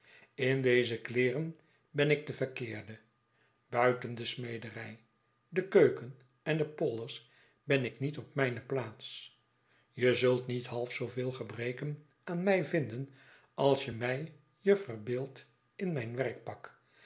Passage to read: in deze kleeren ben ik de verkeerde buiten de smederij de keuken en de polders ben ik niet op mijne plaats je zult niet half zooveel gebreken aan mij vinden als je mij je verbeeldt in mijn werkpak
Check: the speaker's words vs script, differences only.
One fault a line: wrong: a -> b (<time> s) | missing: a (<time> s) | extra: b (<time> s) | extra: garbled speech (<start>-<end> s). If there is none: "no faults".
no faults